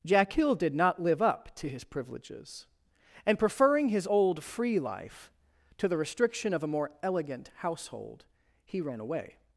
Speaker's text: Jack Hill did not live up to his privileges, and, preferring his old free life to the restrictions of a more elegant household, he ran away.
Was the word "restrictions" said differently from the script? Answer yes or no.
yes